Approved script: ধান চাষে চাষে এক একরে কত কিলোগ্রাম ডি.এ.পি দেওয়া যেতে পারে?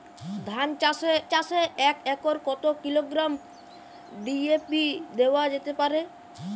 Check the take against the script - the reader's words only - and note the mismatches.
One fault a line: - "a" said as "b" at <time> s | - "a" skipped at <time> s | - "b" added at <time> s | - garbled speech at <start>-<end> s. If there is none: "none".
none